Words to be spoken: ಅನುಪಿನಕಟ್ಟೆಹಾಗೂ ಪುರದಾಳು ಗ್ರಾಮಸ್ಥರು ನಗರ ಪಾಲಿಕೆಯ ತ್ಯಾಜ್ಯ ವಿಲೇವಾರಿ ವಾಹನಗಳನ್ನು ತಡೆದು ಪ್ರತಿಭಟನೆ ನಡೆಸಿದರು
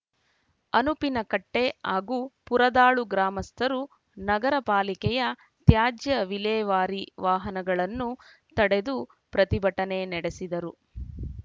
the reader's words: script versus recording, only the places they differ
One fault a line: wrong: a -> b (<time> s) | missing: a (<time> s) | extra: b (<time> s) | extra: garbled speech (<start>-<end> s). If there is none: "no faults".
no faults